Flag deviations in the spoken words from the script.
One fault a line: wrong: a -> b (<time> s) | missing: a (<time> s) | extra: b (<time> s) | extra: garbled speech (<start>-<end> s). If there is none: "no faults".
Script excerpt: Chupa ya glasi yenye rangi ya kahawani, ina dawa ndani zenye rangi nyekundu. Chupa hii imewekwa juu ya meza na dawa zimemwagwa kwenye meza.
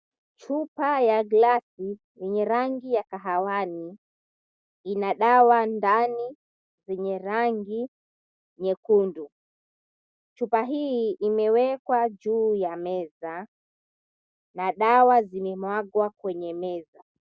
no faults